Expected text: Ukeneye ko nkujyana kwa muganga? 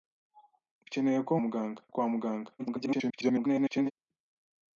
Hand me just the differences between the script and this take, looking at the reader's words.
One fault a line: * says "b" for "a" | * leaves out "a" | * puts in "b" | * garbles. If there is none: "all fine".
* says "muganga" for "nkujyana"
* garbles